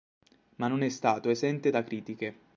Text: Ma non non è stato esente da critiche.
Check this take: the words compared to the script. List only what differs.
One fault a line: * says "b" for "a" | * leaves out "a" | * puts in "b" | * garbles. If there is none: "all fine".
* leaves out "non"